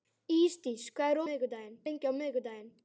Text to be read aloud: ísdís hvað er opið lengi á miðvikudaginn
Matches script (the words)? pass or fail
fail